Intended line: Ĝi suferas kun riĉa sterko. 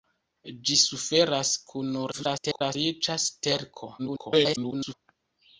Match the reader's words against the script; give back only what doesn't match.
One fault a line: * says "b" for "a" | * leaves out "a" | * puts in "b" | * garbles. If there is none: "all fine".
* garbles
* garbles